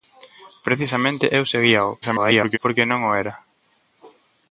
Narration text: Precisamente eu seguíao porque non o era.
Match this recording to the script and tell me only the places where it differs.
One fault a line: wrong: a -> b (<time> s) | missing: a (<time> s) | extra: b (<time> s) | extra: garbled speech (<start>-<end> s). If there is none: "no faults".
extra: garbled speech (2.0-2.6 s)